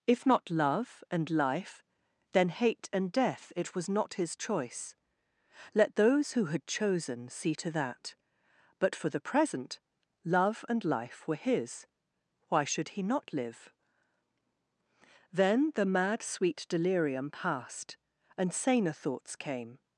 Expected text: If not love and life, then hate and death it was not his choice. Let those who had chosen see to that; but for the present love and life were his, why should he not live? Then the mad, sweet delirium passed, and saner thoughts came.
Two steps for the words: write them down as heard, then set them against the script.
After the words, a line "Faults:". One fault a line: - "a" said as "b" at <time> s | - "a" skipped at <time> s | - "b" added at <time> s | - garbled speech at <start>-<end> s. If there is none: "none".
If not love and life, then hate and death it was not his choice. Let those who had chosen see to that; but for the present love and life were his, why should he not live? Then the mad, sweet delirium passed, and saner thoughts came.
Faults:
none